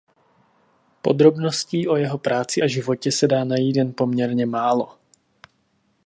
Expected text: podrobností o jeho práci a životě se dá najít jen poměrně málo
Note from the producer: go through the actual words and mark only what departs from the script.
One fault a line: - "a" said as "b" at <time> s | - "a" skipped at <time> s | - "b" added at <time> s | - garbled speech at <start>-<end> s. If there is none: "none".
none